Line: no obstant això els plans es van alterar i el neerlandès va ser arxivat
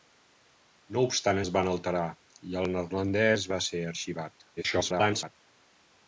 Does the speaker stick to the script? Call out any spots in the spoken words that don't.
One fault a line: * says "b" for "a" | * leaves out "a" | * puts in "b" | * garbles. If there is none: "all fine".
* leaves out "això els plans"
* garbles